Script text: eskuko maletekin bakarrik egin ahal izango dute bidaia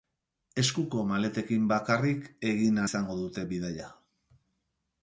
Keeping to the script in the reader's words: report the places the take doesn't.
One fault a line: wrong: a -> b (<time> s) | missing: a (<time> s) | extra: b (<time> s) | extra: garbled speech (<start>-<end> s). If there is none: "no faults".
missing: ahal (2.8 s)